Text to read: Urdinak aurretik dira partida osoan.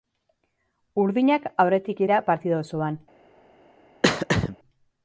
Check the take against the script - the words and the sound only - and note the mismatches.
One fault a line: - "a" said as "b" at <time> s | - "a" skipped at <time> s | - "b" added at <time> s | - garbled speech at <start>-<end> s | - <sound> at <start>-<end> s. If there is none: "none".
- throat clearing at 4.0-4.6 s